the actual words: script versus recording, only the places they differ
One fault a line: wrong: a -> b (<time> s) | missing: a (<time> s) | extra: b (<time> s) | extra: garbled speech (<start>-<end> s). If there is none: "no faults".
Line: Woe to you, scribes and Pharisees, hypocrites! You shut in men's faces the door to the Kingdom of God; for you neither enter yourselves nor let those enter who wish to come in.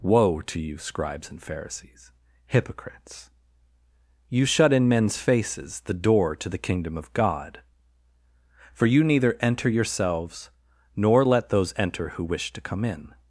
no faults